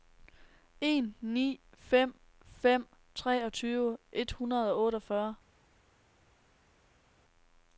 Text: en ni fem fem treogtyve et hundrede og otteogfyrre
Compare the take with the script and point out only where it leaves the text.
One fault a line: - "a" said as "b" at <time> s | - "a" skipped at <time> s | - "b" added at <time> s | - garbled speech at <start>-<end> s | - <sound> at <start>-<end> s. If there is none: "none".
none